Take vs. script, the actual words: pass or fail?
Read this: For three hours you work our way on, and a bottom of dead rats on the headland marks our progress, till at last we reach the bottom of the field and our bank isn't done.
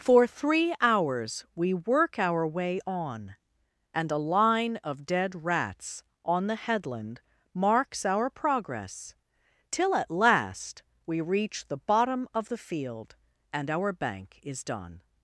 fail